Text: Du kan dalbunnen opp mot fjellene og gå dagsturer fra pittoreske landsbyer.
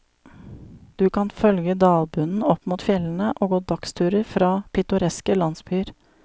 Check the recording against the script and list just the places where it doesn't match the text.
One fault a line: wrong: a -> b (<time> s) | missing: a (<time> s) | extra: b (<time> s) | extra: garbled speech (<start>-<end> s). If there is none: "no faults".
extra: følge (1.4 s)